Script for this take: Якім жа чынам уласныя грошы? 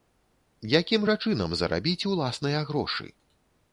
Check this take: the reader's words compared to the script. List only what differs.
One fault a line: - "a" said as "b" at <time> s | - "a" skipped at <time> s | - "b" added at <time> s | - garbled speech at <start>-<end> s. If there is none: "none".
- "зарабіць" added at 1.6 s